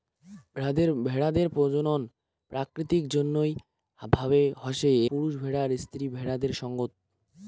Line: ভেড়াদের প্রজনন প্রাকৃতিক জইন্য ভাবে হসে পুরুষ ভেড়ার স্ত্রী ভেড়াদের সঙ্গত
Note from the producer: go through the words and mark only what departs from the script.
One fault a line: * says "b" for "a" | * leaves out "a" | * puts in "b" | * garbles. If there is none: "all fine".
all fine